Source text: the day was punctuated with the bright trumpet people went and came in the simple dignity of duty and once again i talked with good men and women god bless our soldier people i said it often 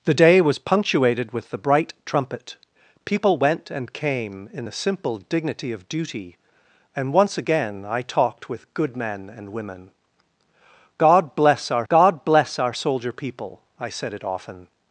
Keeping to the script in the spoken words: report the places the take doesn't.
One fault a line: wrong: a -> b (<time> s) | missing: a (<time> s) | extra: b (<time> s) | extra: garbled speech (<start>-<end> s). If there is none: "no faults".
extra: god bless our (11.9 s)